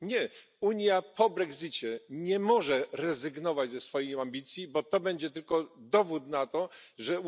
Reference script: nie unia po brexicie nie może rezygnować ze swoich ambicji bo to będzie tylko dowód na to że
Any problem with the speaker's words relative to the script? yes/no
no